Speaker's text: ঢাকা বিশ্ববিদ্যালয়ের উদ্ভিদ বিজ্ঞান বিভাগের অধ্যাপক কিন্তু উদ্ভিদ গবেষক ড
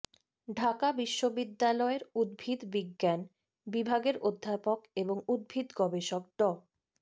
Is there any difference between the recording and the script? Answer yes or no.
yes